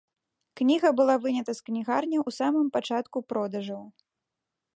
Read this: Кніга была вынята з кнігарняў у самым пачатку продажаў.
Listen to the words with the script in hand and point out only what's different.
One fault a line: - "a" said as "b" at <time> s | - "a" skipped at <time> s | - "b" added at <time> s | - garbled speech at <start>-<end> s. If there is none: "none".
none